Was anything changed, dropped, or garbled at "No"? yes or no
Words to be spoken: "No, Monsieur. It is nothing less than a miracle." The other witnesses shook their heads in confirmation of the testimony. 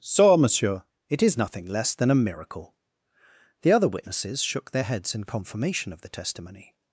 yes